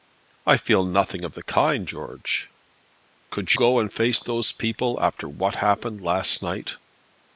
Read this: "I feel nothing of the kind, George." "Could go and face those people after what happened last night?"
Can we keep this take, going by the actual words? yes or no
yes